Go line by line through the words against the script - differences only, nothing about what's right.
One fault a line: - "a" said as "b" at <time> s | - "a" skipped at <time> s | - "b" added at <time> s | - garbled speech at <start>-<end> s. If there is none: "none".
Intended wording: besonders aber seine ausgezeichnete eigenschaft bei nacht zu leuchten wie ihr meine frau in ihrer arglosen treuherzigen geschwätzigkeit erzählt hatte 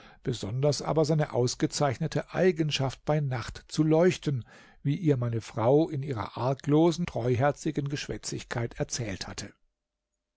none